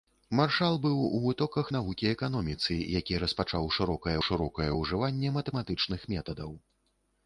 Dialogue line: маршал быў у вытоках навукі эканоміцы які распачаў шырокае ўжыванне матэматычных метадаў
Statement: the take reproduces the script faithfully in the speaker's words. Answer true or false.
false